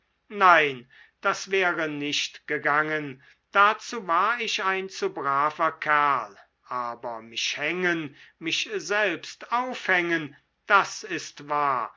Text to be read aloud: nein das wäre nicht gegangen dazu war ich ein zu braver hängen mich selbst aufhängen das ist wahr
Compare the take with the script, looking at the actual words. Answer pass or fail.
fail